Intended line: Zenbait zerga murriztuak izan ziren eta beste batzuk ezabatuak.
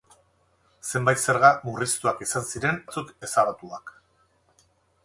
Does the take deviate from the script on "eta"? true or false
true